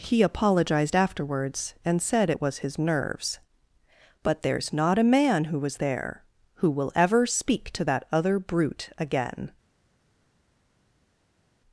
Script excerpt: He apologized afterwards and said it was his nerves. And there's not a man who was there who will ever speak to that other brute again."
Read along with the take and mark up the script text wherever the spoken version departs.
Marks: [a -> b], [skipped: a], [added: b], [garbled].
He apologized afterwards and said it was his nerves. [And -> But] there's not a man who was there who will ever speak to that other brute again."